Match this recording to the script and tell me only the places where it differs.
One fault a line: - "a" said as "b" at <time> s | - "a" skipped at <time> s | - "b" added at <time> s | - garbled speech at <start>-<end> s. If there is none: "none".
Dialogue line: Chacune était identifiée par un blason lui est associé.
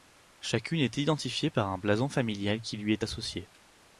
- "était" said as "est" at 0.8 s
- "familial qui" added at 2.1 s